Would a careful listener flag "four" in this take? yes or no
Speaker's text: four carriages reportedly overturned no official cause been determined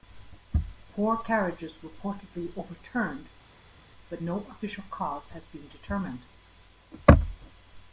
no